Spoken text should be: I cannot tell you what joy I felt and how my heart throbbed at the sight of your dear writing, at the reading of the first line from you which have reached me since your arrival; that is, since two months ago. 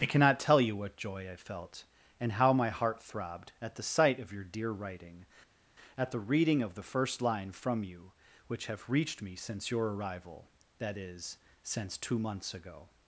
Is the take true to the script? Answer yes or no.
yes